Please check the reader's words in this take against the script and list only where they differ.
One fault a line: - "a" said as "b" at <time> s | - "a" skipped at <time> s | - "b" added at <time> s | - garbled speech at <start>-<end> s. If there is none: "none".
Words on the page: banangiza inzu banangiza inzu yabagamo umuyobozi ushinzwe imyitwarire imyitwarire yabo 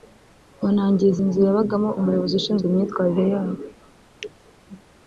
- "banangiza inzu" skipped at 1.4 s
- "imyitwarire" skipped at 3.2 s